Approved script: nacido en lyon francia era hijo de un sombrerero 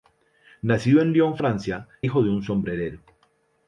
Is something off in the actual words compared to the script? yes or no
yes